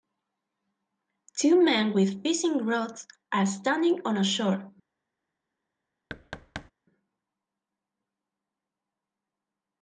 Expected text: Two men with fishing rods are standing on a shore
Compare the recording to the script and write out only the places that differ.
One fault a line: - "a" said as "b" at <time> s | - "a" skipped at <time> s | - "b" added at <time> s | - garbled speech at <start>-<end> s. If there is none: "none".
none